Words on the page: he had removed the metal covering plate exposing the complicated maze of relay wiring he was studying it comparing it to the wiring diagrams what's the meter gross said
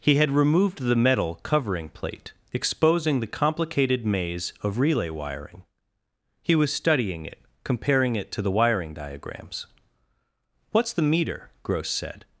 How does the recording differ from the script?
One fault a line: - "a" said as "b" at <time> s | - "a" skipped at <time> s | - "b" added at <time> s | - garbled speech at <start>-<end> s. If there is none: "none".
none